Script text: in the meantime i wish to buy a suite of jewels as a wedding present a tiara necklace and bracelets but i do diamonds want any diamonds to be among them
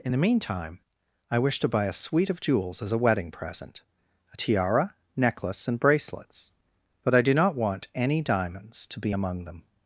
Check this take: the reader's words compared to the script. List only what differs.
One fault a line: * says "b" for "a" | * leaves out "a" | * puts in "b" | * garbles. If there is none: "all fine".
* says "not" for "diamonds"